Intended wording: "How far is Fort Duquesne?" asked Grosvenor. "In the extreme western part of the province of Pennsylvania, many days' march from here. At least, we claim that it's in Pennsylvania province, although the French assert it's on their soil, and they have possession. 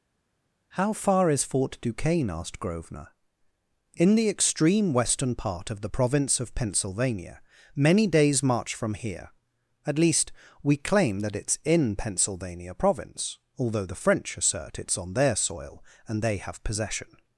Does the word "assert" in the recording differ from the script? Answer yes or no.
no